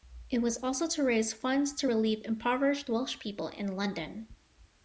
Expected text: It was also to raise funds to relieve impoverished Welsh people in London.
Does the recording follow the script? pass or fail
pass